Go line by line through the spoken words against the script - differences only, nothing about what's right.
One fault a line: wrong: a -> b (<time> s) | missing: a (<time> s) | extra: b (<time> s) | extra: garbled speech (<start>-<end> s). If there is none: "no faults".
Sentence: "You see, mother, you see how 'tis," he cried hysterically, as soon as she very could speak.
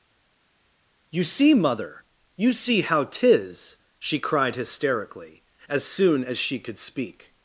wrong: he -> she (4.0 s)
missing: very (6.6 s)